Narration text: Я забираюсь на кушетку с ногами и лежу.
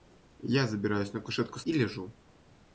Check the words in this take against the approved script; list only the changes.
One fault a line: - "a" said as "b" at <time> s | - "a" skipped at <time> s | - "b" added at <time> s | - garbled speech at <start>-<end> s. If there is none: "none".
- "ногами" skipped at 1.6 s